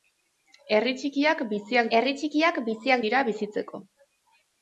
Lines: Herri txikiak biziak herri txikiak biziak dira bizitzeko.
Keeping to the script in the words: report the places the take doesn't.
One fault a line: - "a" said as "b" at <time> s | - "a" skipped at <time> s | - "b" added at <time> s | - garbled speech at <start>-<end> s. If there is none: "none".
none